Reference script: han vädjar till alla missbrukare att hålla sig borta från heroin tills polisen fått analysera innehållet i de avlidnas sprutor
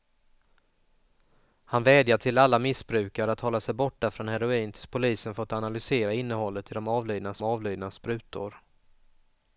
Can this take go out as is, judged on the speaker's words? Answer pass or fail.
fail